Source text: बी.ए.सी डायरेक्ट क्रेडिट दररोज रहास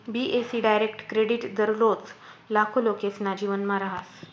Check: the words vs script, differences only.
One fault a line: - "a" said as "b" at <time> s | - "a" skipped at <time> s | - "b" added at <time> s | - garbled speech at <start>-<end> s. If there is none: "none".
- "लाखो लोकेसना जीवनमा" added at 2.5 s